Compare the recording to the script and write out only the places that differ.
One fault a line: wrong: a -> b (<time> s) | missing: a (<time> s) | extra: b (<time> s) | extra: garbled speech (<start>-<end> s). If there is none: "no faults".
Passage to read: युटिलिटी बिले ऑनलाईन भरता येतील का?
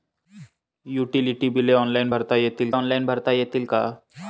extra: ऑनलाईन भरता येतील (2.7 s)